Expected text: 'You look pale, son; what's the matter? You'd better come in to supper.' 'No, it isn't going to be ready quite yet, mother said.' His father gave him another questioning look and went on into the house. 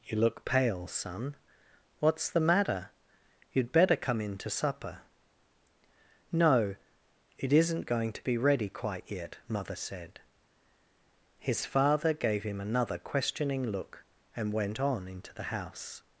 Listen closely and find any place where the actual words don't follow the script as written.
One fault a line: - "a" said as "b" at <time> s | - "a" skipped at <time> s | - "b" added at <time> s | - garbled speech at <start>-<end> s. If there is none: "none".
none